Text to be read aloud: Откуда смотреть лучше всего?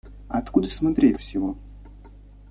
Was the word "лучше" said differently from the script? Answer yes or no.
yes